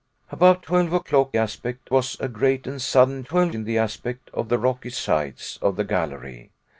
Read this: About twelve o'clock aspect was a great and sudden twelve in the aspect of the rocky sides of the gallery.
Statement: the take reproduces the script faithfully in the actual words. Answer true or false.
true